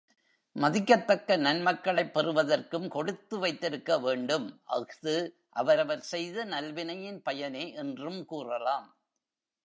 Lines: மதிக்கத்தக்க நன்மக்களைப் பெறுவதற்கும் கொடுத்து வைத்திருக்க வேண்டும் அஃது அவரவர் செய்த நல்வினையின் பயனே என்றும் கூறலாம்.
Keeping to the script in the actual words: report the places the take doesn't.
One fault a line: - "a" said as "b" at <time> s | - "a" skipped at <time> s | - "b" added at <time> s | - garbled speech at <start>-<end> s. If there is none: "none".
none